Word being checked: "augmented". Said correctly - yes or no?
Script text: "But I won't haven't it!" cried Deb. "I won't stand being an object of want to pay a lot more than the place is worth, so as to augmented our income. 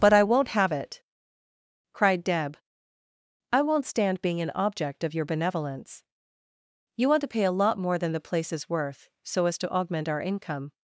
no